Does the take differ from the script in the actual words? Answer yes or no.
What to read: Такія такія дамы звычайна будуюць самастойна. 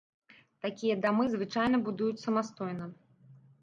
yes